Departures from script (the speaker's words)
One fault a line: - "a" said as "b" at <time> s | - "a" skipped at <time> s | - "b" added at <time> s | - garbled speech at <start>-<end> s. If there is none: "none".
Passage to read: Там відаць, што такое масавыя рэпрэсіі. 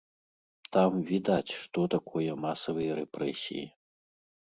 none